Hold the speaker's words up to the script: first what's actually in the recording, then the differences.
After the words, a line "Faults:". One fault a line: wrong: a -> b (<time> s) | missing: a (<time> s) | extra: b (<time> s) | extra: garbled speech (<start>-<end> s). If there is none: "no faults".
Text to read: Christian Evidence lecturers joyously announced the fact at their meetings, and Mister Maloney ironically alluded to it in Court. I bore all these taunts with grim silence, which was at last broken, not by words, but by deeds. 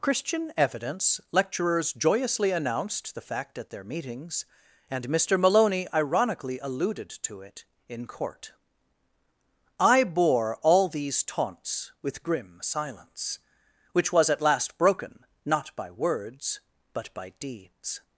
Christian Evidence lecturers joyously announced the fact at their meetings, and Mister Maloney ironically alluded to it in Court. I bore all these taunts with grim silence, which was at last broken, not by words, but by deeds.
Faults:
no faults